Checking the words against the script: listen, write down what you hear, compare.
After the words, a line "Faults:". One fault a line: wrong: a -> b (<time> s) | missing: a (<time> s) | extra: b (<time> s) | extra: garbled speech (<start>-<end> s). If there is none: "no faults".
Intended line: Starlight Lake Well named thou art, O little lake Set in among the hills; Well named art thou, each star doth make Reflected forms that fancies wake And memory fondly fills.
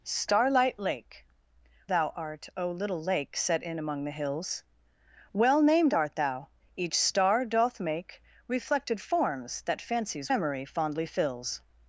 Starlight Lake Thou art, O little lake Set in among the hills; Well named art thou, each star doth make Reflected forms that fancies memory fondly fills.
Faults:
missing: Well named (1.3 s)
missing: wake And (10.3 s)